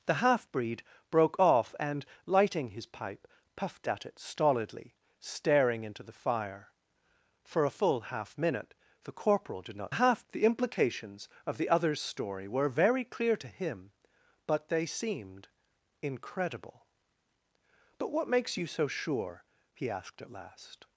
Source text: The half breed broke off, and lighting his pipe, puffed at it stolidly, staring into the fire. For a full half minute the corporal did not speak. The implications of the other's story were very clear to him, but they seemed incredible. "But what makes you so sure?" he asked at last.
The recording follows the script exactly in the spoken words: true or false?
false